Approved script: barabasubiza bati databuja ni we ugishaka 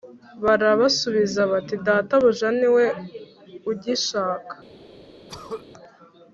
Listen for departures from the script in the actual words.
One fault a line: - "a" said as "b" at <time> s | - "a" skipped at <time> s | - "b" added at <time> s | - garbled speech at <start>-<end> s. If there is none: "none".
none